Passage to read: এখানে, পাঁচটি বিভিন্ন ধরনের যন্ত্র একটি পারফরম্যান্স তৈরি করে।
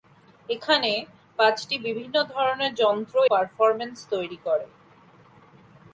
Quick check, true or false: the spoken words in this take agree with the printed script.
false